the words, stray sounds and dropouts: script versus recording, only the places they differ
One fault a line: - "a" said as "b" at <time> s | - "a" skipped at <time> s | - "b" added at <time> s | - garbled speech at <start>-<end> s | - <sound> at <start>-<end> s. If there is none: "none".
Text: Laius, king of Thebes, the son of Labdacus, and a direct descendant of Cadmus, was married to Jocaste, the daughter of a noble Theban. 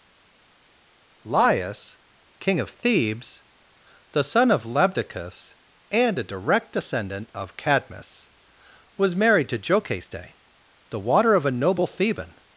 - "daughter" said as "water" at 11.0 s